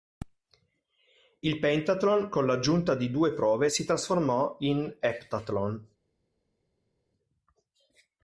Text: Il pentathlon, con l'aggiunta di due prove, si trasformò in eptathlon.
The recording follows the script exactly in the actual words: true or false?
true